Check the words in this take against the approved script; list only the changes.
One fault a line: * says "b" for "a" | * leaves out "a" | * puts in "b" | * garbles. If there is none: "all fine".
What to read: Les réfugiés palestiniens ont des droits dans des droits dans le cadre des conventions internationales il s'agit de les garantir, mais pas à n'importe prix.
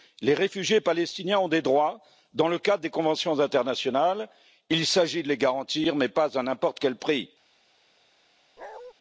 * leaves out "des droits dans"
* puts in "quel"